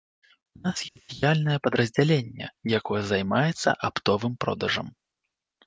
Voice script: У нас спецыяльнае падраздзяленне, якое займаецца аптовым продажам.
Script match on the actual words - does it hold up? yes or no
yes